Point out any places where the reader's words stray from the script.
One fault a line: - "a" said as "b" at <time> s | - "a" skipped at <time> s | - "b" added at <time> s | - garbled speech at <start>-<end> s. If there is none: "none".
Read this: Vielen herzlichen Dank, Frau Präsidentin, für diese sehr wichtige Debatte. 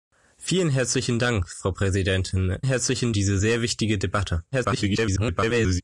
- "für" said as "herzlichen" at 2.6 s
- garbled speech at 4.5-5.8 s